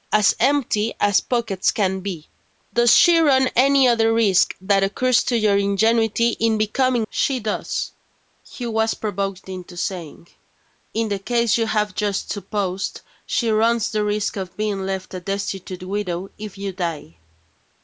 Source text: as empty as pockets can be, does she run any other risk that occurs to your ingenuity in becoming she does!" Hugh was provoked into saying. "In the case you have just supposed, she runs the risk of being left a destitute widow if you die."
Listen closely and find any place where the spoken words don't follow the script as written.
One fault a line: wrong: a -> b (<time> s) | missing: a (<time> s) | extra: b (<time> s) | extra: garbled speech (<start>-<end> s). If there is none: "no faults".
no faults